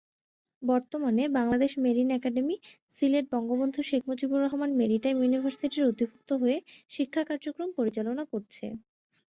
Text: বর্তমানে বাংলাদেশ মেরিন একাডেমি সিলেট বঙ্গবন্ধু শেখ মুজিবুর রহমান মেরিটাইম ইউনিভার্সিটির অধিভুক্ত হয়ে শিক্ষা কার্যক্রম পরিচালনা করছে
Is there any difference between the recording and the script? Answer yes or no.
no